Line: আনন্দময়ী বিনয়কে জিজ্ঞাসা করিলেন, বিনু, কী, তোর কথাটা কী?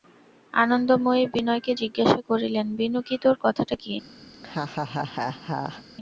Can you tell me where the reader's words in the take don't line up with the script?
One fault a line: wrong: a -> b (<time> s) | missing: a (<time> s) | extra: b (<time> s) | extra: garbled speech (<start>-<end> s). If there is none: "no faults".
no faults